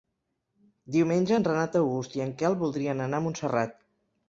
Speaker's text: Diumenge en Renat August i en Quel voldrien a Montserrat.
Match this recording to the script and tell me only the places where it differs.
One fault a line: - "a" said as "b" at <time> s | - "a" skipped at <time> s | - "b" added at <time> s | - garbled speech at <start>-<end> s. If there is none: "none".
- "anar" added at 3.1 s